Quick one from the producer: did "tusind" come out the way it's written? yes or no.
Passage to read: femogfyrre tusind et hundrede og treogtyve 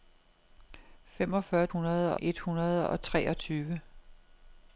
no